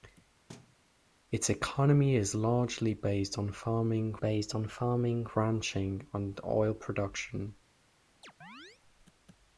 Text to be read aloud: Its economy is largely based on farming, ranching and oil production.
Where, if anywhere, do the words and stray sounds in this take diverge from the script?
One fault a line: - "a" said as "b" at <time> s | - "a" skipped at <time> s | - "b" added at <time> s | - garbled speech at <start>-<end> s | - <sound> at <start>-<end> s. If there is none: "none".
- thud at 0.5-0.8 s
- "based on farming" added at 4.1 s
- chirp at 8.2-8.8 s